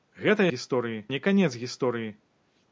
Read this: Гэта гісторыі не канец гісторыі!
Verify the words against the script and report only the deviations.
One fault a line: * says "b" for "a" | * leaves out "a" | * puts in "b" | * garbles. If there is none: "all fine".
all fine